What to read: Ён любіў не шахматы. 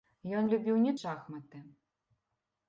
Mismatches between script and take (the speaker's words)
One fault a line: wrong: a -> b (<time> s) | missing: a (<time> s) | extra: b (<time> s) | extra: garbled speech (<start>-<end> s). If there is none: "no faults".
no faults